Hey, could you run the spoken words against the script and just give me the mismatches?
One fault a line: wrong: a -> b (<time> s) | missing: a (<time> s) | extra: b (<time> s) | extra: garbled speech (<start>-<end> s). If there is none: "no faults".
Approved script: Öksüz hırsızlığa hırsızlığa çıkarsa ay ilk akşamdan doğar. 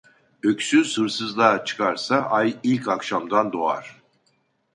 missing: hırsızlığa (1.6 s)